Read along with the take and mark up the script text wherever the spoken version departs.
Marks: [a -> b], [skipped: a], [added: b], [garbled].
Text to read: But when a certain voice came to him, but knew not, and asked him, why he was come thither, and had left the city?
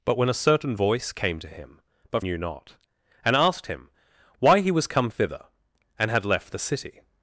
But when a certain voice came to him, but knew not, and asked him, why he was come thither, and had left the city?